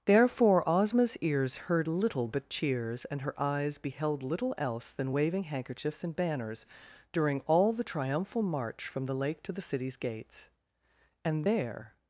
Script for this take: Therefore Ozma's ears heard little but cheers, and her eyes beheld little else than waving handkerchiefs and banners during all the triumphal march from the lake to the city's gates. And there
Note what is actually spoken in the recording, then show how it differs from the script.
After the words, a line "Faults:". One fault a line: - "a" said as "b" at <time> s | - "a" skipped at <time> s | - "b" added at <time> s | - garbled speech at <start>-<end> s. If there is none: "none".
Therefore Ozma's ears heard little but cheers, and her eyes beheld little else than waving handkerchiefs and banners during all the triumphal march from the lake to the city's gates. And there
Faults:
none